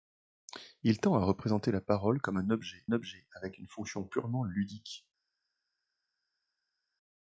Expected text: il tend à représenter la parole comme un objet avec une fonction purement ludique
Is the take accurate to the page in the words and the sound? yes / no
no